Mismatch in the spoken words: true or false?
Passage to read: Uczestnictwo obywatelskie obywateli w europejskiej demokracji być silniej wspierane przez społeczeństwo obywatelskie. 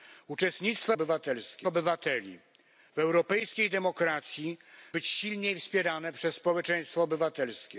false